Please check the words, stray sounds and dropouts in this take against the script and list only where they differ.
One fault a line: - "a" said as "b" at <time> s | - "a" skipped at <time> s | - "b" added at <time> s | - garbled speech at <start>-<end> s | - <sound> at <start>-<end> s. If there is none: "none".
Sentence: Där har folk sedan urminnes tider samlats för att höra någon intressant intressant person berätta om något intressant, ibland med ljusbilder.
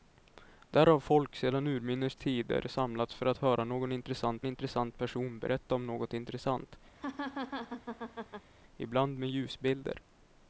- laugh at 6.9-8.5 s